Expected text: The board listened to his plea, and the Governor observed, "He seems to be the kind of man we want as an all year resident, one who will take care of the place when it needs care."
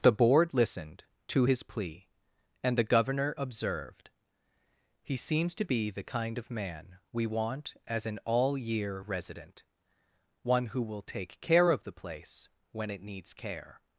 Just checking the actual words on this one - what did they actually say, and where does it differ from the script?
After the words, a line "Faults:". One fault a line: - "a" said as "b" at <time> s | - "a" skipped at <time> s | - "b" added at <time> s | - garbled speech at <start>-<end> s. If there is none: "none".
The board listened to his plea, and the Governor observed, "He seems to be the kind of man we want as an all year resident, one who will take care of the place when it needs care."
Faults:
none